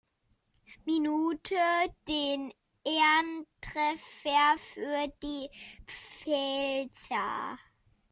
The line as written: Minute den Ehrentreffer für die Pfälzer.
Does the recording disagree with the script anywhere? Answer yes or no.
no